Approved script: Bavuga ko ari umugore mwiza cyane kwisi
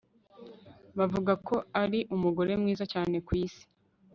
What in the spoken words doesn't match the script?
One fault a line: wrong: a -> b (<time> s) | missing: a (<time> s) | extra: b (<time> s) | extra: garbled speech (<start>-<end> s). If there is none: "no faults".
no faults